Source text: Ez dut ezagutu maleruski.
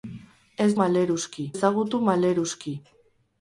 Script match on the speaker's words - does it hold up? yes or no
no